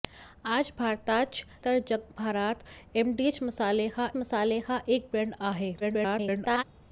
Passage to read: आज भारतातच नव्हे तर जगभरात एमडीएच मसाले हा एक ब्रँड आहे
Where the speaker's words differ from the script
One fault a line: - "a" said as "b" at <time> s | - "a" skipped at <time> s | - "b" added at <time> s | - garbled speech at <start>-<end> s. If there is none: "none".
- "नव्हे" skipped at 1.4 s
- "मसाले हा" added at 4.2 s
- garbled speech at 5.8-6.6 s